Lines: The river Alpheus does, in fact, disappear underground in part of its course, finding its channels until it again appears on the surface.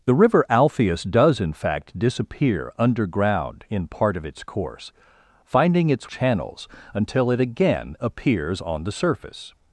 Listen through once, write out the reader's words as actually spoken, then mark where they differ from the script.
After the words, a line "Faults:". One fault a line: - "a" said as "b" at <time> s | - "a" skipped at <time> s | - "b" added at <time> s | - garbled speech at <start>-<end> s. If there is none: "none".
The river Alpheus does, in fact, disappear underground in part of its course, finding its channels until it again appears on the surface.
Faults:
none